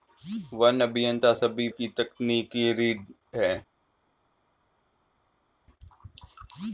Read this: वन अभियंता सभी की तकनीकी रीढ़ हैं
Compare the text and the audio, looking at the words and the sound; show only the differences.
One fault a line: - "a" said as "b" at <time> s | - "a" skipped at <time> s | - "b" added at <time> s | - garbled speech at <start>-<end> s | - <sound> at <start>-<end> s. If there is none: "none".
none